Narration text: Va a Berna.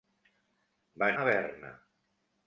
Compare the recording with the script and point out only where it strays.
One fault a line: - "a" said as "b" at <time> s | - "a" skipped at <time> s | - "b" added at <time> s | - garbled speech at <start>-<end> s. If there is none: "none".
none